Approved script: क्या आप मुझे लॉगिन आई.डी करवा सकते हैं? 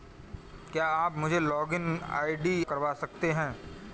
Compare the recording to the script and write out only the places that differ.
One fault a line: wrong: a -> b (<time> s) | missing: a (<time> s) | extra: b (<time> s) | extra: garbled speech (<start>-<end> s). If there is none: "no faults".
no faults